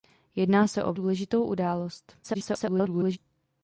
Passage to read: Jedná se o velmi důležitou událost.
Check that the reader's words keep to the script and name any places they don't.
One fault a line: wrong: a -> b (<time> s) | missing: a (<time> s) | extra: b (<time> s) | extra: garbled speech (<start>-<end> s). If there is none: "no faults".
missing: velmi (0.9 s)
extra: garbled speech (2.2-3.2 s)